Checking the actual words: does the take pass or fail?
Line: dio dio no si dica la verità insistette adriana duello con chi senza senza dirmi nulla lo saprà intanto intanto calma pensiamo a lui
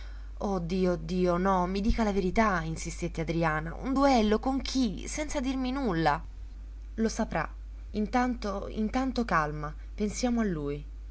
fail